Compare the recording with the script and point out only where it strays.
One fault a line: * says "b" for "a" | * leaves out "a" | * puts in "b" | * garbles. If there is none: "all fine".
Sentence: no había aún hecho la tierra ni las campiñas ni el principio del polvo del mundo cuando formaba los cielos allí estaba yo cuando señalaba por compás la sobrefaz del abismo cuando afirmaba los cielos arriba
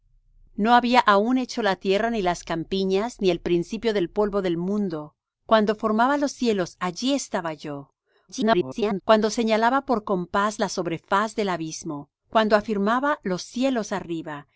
* garbles